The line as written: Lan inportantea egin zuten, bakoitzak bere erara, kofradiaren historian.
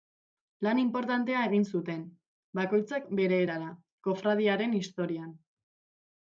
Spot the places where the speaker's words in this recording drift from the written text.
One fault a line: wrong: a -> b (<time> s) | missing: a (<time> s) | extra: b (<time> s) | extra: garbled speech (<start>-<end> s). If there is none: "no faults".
no faults